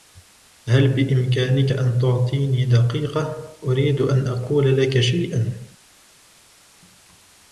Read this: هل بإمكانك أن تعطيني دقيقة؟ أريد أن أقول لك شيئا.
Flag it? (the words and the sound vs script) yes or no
no